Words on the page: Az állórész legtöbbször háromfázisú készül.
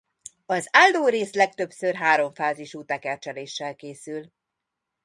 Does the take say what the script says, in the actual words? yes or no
no